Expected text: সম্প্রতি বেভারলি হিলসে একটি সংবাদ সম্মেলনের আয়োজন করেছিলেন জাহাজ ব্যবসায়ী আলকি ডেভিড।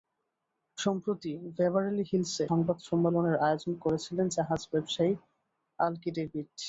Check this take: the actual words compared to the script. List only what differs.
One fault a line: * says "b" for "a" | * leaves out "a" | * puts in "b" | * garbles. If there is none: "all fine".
* leaves out "একটি"